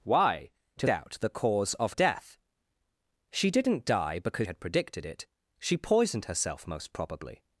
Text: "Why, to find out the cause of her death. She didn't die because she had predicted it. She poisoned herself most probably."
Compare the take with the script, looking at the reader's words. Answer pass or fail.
fail